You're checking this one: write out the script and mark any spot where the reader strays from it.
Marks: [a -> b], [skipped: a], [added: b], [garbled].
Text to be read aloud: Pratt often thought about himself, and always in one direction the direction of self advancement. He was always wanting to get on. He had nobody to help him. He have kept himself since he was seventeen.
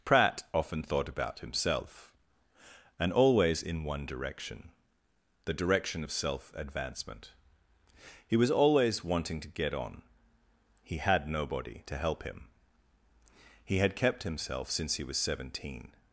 Pratt often thought about himself, and always in one direction the direction of self advancement. He was always wanting to get on. He had nobody to help him. He [have -> had] kept himself since he was seventeen.